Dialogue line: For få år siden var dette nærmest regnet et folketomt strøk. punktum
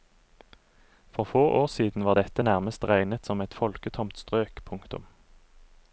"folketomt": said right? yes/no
yes